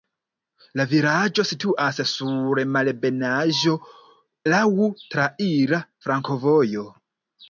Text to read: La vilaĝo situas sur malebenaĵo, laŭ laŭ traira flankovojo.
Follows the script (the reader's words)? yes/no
no